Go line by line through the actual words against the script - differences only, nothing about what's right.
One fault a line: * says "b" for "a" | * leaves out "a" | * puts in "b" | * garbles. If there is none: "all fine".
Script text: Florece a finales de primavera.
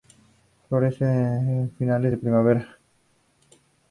all fine